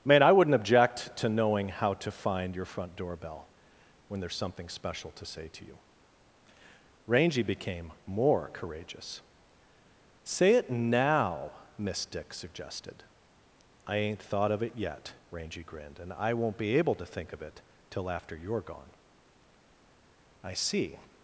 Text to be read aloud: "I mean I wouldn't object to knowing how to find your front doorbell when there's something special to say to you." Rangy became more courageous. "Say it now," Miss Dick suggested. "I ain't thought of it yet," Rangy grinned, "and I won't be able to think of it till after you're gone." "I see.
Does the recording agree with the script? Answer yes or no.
no